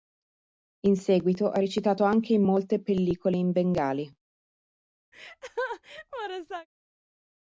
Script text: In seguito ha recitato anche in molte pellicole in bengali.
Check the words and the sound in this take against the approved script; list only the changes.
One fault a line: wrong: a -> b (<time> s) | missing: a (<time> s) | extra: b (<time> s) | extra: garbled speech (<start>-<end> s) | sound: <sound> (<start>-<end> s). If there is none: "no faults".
sound: laugh (5.1-6.7 s)